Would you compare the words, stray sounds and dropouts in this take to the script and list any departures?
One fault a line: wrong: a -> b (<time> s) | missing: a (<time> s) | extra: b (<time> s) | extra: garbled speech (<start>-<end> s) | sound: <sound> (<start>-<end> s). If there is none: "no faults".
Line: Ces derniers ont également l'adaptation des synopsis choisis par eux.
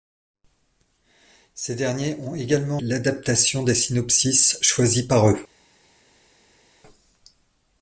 no faults